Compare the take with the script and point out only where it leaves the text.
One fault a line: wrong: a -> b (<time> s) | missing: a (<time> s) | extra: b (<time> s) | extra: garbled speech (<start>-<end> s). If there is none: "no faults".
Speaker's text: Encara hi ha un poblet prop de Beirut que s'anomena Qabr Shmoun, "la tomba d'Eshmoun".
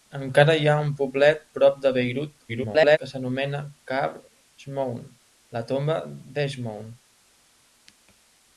extra: garbled speech (2.5-3.0 s)